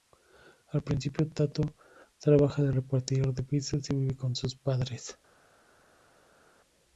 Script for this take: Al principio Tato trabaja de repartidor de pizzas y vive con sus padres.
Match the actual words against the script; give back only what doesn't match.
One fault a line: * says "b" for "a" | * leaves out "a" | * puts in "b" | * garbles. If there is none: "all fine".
all fine